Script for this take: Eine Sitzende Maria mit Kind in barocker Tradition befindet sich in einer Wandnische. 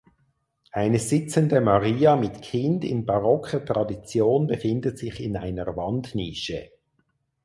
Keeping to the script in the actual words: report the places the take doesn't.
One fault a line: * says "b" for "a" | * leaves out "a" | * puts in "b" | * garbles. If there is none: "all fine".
all fine